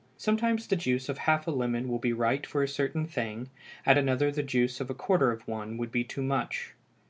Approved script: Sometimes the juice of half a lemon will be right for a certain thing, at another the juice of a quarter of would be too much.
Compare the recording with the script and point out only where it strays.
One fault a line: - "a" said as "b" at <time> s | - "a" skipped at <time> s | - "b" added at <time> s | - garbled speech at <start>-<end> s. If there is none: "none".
- "one" added at 5.4 s